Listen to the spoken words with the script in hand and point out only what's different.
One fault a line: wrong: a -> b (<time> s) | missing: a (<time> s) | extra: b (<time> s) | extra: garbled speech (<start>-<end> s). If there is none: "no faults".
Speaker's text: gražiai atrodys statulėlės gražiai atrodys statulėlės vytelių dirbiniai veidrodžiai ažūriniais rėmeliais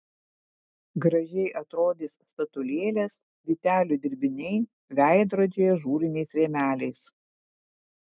missing: gražiai atrodys statulėlės (3.2 s)